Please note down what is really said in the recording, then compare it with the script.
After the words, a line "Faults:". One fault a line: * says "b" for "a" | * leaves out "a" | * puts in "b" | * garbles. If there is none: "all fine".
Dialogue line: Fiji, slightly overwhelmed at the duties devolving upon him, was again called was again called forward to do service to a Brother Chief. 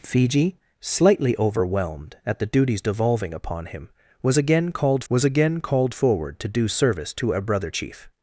Fiji, slightly overwhelmed at the duties devolving upon him, was again called was again called forward to do service to a Brother Chief.
Faults:
all fine